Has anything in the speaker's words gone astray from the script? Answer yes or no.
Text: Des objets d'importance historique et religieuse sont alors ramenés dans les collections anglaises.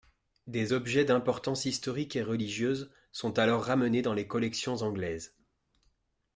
no